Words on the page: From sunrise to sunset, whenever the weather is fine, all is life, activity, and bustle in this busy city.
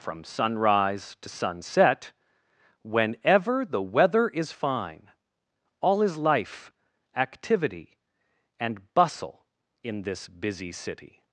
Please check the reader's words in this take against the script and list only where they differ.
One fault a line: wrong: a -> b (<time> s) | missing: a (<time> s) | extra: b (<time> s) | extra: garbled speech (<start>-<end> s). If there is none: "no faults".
no faults